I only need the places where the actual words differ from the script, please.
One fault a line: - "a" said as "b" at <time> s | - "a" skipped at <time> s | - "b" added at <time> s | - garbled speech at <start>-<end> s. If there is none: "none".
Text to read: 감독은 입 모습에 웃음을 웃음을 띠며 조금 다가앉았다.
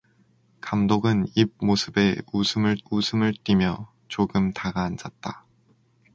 none